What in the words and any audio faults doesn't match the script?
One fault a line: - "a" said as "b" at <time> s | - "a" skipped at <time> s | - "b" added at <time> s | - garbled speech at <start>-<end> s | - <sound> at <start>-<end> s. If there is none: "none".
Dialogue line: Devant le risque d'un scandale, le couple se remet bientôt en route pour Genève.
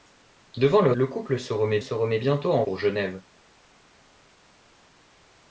- "risque d'un scandale" skipped at 0.9 s
- "se remet" added at 1.8 s
- "route" skipped at 2.6 s